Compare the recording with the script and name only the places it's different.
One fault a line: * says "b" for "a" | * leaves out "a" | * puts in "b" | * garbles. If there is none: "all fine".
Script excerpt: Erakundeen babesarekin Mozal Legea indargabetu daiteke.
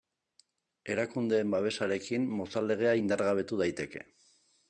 all fine